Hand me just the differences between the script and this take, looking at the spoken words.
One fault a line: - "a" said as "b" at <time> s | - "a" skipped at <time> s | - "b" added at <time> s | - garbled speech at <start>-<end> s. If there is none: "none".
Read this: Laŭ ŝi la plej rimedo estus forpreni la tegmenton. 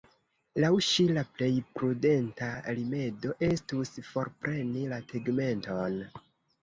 - "prudenta" added at 1.8 s